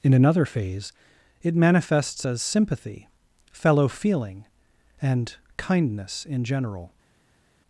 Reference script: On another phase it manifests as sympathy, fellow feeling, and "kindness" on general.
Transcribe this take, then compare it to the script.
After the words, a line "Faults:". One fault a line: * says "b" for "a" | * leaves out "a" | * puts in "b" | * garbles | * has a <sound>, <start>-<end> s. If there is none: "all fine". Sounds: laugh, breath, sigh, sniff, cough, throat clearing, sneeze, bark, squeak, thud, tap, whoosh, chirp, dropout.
In another phase it manifests as sympathy, fellow feeling, and "kindness" in general.
Faults:
* says "In" for "On"
* says "in" for "on"